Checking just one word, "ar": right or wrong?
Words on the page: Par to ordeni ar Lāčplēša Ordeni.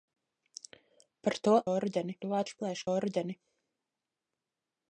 right